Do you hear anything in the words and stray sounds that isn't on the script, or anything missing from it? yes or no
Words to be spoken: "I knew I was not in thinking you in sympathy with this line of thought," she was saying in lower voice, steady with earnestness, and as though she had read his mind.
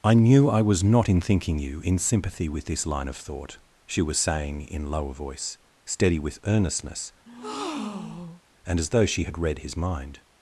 yes